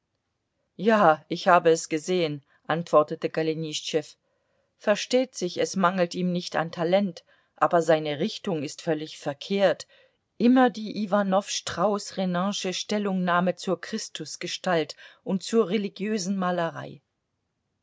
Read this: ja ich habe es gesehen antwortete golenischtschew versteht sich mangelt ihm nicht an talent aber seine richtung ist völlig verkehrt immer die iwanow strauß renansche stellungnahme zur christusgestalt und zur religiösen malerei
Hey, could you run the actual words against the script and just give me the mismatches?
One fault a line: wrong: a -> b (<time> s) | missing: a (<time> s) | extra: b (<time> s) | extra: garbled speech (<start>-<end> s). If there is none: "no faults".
extra: es (5.6 s)